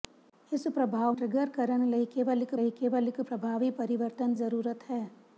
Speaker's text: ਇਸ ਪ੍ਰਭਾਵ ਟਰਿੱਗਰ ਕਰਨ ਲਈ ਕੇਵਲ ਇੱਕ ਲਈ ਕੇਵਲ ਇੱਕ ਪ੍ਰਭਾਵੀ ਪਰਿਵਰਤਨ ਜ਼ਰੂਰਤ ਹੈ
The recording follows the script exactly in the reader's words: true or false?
true